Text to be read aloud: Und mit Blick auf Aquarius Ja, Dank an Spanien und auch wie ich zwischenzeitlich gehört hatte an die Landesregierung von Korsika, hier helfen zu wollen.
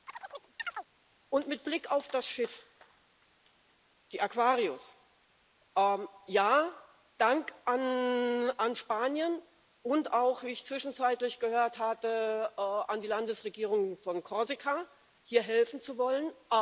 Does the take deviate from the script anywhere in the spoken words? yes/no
yes